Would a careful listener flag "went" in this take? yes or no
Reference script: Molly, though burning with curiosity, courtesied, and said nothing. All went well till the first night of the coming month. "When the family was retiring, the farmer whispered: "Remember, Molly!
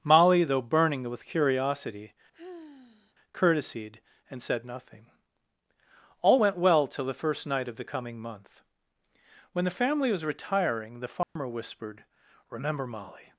no